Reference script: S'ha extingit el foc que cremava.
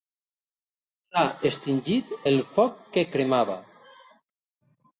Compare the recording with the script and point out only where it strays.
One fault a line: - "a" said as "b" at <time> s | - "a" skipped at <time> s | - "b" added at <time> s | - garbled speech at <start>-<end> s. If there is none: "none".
none